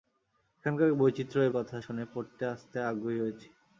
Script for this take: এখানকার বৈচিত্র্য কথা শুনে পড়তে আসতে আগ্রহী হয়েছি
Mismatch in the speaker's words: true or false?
false